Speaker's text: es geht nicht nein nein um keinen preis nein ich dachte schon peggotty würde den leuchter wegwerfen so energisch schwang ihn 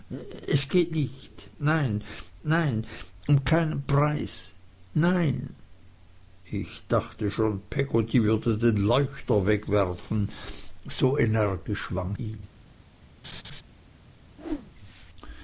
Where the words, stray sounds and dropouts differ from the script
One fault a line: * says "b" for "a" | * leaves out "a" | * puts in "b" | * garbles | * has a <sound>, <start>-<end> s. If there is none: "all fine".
* has a laugh, 13.2-13.6 s
* has a whoosh, 14.4-14.7 s